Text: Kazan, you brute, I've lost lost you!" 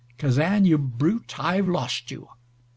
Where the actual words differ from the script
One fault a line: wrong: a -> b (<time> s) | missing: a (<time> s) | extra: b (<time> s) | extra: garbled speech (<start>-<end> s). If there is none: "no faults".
missing: lost (2.1 s)